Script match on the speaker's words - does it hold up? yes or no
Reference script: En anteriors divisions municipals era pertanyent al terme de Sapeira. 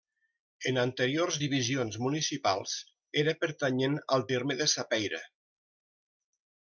yes